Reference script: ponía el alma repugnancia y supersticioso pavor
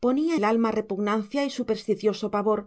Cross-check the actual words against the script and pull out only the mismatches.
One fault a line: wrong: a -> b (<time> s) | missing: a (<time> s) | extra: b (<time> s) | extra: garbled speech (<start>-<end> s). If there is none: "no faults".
no faults